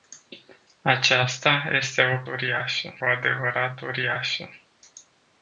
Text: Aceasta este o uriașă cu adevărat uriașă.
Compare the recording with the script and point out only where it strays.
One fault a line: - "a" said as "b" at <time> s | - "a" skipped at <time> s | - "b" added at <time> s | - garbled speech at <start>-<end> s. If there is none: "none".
none